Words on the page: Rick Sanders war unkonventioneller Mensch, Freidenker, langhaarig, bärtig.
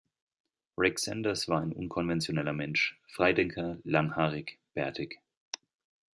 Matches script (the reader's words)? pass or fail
fail